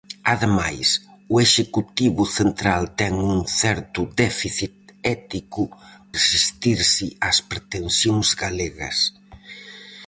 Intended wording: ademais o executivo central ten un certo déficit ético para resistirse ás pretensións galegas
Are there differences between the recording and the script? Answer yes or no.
yes